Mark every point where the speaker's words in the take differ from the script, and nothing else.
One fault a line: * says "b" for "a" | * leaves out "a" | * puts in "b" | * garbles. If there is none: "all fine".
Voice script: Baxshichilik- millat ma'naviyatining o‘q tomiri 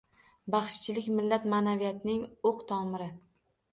all fine